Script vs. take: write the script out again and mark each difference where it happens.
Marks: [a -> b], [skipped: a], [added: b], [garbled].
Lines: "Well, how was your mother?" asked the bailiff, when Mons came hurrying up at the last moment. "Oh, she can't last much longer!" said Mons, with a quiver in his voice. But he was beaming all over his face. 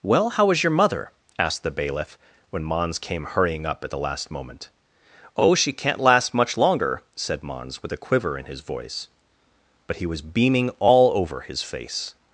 "Well, how [was -> is] your mother?" asked the bailiff, when Mons came hurrying up at the last moment. "Oh, she can't last much longer!" said Mons, with a quiver in his voice. But he was beaming all over his face.